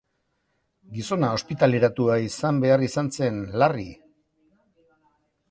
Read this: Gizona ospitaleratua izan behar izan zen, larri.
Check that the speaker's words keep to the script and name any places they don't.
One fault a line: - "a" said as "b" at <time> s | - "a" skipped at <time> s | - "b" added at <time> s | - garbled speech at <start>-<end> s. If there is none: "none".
none